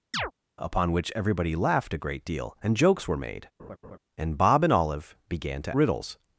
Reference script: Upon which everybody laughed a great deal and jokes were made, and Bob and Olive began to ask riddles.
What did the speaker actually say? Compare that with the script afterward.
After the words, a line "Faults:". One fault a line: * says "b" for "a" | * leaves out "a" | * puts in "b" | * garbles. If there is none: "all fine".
Upon which everybody laughed a great deal and jokes were made, and Bob and Olive began to riddles.
Faults:
* leaves out "ask"